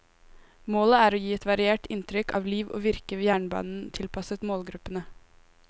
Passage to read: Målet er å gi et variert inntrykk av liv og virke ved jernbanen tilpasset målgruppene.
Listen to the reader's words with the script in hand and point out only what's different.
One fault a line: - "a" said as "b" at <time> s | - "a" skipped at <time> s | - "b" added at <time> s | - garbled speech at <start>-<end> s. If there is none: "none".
none